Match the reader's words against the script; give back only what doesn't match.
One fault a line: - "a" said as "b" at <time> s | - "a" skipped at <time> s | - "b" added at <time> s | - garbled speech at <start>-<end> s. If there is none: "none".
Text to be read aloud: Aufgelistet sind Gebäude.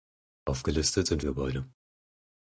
none